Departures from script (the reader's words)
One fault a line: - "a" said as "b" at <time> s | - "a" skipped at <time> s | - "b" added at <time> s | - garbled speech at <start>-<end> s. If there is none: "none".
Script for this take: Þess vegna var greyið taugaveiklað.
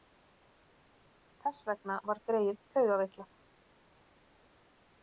none